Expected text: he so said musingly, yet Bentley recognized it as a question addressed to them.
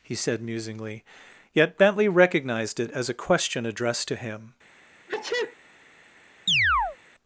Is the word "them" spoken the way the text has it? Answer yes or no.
no